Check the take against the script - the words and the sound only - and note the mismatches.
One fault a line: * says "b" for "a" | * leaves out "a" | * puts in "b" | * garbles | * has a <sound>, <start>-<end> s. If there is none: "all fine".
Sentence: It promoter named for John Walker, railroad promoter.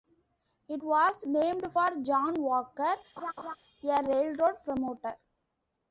* says "was" for "promoter"
* has a laugh, 3.2-3.6 s
* puts in "a"